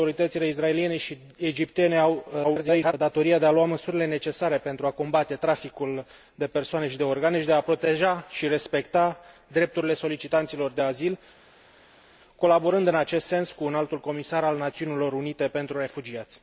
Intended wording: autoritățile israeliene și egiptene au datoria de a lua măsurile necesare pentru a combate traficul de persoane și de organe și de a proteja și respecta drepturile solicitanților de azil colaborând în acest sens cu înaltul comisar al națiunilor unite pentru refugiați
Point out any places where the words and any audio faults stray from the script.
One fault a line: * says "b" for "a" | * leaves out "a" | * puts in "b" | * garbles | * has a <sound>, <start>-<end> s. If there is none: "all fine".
* garbles